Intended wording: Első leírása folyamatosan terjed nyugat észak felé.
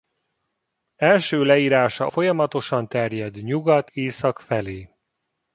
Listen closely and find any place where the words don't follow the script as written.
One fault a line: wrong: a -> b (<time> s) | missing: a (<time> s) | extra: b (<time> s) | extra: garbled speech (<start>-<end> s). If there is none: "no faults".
no faults